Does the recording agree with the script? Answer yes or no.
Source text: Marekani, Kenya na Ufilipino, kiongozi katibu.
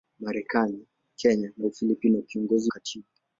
yes